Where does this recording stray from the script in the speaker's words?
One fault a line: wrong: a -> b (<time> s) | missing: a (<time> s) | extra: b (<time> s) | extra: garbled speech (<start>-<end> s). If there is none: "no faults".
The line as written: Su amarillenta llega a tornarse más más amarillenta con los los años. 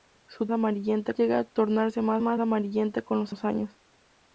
no faults